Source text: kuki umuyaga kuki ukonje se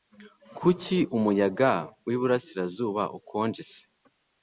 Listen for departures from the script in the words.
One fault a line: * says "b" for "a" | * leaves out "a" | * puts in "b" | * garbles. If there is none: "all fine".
* says "wiburasirazuba" for "kuki"